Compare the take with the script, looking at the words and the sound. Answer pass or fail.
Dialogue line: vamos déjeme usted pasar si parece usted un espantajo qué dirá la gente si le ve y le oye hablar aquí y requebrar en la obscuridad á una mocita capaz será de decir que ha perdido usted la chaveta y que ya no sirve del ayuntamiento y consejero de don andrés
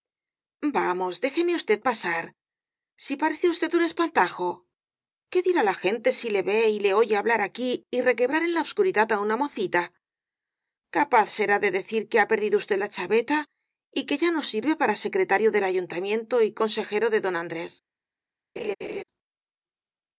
fail